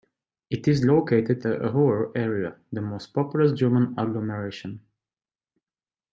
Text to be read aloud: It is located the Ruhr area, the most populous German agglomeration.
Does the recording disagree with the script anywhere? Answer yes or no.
no